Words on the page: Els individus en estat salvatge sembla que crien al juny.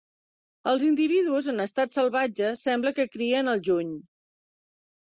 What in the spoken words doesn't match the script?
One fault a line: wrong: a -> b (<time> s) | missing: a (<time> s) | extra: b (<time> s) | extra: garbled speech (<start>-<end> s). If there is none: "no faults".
no faults